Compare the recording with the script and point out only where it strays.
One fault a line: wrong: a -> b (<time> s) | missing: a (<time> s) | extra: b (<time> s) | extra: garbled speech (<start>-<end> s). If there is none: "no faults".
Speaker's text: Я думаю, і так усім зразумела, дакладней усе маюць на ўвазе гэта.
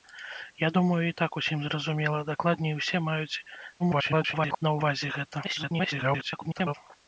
extra: garbled speech (3.8-4.6 s)
extra: garbled speech (5.4-6.7 s)